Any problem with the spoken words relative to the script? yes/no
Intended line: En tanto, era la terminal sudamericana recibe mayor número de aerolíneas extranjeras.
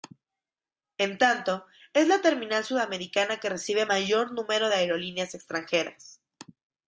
yes